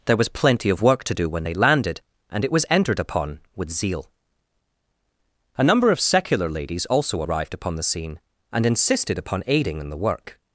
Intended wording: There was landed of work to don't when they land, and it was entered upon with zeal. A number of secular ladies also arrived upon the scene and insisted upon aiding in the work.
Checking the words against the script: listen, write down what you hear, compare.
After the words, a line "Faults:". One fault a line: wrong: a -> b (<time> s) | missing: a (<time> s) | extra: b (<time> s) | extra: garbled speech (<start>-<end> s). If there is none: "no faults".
There was plenty of work to do when they landed, and it was entered upon with zeal. A number of secular ladies also arrived upon the scene and insisted upon aiding in the work.
Faults:
wrong: landed -> plenty (0.3 s)
wrong: don't -> do (1.1 s)
wrong: land -> landed (1.5 s)